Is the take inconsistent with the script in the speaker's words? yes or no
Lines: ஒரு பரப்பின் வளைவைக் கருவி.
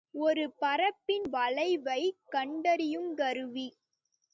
yes